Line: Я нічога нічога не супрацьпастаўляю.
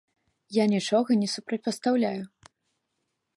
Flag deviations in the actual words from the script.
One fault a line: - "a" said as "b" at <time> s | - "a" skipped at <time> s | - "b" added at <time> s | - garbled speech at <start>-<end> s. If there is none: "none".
- "нічога" skipped at 1.2 s